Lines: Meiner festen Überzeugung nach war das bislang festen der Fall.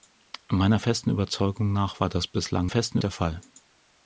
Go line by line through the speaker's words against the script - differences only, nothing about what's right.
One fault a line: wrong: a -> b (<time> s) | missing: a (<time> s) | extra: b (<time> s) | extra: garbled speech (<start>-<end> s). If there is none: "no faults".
no faults